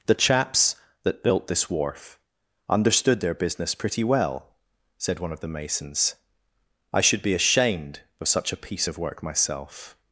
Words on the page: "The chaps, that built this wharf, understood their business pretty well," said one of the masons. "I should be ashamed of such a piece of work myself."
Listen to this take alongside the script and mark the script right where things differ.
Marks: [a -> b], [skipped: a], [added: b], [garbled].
"The chaps, that built this wharf, understood their business pretty well," said one of the masons. "I should be ashamed of such a piece of work myself."